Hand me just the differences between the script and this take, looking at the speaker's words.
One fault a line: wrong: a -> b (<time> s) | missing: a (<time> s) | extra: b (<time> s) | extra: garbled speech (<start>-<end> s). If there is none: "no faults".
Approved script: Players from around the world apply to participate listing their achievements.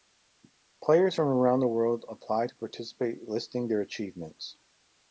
no faults